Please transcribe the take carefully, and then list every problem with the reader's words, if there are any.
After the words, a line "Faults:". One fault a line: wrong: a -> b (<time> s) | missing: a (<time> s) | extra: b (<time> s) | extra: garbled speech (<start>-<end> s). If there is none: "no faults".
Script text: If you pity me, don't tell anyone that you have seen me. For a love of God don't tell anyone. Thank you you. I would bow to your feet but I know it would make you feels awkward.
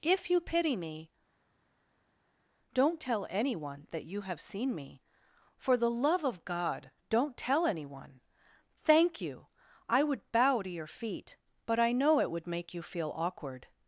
If you pity me, don't tell anyone that you have seen me. For the love of God don't tell anyone. Thank you. I would bow to your feet but I know it would make you feel awkward.
Faults:
wrong: a -> the (5.8 s)
missing: you (9.5 s)
wrong: feels -> feel (12.8 s)